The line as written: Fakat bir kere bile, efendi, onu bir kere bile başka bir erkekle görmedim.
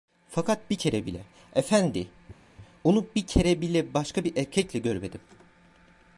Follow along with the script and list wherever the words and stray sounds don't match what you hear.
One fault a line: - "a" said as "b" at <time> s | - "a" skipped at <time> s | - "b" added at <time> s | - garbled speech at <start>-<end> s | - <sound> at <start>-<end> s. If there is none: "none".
none